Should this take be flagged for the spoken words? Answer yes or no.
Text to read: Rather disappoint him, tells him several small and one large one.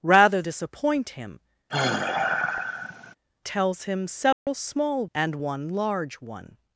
no